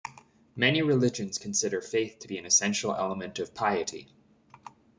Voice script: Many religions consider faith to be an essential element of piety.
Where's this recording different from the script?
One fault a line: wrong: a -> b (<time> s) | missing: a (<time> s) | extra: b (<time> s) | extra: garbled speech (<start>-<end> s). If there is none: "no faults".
no faults